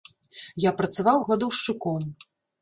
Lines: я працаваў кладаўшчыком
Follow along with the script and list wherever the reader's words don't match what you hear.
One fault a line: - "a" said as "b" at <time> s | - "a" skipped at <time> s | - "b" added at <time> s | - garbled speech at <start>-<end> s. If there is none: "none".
none